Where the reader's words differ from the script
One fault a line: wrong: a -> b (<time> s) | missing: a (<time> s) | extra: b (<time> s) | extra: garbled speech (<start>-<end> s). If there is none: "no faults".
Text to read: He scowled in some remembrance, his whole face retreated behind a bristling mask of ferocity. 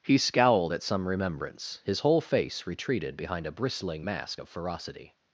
wrong: in -> at (0.7 s)